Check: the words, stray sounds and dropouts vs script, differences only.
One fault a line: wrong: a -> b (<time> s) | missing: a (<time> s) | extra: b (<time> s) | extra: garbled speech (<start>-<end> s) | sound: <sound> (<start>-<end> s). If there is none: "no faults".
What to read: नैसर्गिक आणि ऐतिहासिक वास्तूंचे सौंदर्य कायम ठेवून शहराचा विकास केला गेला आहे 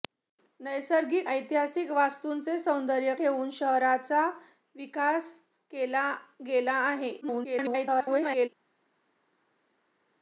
missing: आणि (1.3 s)
missing: कायम (3.1 s)
extra: garbled speech (7.2-8.5 s)